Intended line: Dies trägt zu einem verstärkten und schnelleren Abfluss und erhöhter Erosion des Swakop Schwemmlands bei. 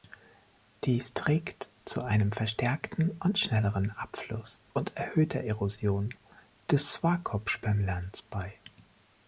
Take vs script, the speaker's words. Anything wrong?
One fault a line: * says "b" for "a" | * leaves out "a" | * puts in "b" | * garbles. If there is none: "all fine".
all fine